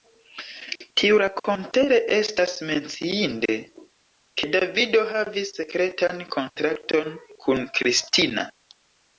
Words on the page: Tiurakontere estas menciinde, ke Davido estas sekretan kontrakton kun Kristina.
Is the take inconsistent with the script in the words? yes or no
yes